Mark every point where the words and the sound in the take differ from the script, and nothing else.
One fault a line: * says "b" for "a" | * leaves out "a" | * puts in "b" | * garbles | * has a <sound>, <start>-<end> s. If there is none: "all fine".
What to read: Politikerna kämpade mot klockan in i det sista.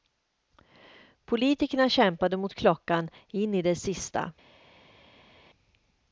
all fine